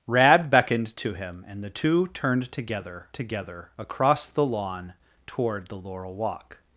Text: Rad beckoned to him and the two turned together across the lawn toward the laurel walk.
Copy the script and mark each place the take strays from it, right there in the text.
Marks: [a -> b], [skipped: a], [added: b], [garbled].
Rad beckoned to him and the two turned together [added: together] across the lawn toward the laurel walk.